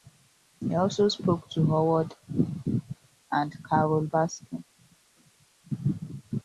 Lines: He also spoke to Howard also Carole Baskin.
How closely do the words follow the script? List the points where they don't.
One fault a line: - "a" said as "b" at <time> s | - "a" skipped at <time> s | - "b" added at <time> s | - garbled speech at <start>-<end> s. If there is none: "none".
- "also" said as "and" at 3.3 s